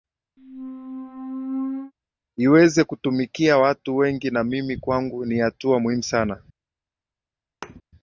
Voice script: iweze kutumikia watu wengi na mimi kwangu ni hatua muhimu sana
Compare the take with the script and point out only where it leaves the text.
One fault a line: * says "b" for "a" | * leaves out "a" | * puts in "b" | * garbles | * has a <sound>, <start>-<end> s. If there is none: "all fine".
* has a squeak, 0.4-1.9 s
* has a thud, 7.6-7.8 s